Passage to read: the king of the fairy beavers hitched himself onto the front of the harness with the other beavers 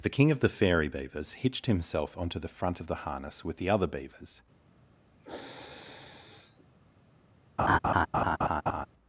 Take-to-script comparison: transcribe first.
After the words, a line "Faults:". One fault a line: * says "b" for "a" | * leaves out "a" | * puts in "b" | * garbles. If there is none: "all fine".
the king of the fairy beavers hitched himself onto the front of the harness with the other beavers
Faults:
all fine